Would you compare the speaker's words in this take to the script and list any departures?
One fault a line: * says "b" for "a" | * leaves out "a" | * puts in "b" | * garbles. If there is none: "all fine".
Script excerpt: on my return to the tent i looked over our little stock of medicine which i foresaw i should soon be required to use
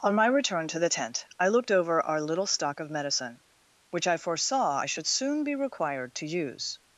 all fine